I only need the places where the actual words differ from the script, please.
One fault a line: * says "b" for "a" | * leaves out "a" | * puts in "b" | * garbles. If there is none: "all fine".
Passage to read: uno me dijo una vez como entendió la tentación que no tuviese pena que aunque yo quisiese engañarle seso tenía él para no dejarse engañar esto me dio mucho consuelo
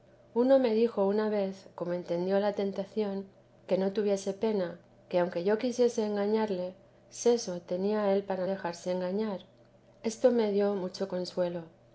* leaves out "no"